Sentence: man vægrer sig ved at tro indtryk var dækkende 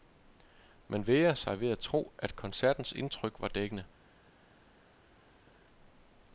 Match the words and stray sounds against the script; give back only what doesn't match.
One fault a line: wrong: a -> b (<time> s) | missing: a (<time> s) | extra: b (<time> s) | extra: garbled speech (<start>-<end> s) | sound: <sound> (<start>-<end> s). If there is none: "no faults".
extra: at koncertens (2.2 s)